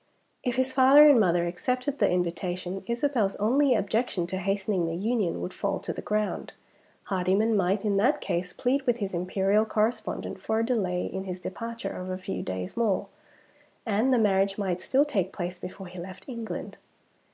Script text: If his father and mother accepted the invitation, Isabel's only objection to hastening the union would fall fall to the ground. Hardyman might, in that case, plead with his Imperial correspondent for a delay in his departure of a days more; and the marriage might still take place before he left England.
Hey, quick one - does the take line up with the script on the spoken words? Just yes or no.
no